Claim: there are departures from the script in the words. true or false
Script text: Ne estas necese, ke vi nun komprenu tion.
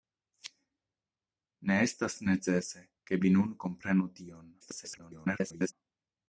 true